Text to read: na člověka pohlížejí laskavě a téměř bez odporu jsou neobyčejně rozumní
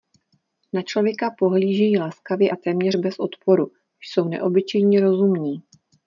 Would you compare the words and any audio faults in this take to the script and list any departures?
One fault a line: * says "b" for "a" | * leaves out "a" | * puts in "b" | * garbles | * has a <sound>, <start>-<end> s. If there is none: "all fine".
all fine